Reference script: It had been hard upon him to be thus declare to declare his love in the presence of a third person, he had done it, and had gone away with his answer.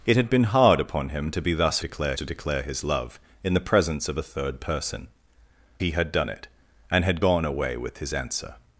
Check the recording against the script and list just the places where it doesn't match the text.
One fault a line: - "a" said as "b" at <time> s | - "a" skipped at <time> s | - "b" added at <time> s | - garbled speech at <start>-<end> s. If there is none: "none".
none